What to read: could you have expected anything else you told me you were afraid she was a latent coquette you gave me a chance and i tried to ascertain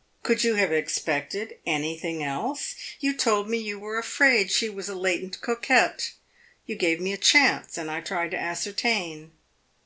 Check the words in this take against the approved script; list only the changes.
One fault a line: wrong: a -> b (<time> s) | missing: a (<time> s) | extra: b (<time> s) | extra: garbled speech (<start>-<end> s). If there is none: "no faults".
no faults